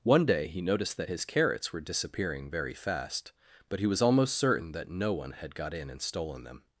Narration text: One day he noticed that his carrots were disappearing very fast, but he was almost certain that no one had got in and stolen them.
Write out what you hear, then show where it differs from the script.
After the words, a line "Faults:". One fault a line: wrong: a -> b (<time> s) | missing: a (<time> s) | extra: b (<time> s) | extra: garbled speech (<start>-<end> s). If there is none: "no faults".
One day he noticed that his carrots were disappearing very fast, but he was almost certain that no one had got in and stolen them.
Faults:
no faults